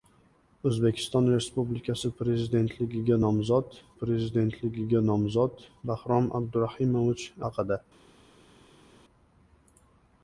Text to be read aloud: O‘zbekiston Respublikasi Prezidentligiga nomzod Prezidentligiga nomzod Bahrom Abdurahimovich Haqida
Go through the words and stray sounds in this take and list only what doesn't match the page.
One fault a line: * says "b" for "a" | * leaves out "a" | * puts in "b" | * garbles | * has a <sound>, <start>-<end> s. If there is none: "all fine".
all fine